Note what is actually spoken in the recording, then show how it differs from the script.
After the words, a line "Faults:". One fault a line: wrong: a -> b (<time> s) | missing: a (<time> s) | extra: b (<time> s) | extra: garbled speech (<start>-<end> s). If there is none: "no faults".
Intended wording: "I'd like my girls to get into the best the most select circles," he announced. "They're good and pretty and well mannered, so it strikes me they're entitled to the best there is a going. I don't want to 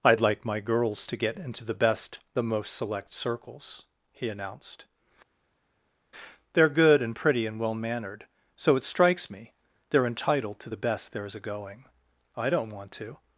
"I'd like my girls to get into the best the most select circles," he announced. "They're good and pretty and well mannered, so it strikes me they're entitled to the best there is a going. I don't want to
Faults:
no faults